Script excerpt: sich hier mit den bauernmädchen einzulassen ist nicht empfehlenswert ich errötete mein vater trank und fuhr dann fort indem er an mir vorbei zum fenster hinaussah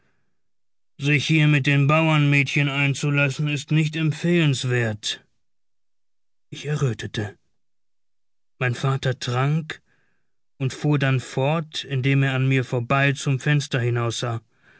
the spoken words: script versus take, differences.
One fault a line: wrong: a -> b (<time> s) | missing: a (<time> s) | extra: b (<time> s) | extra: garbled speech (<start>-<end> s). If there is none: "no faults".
no faults